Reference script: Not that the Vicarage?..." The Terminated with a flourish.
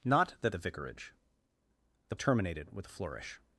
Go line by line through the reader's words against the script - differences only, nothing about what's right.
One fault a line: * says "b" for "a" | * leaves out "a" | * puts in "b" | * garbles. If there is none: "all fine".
all fine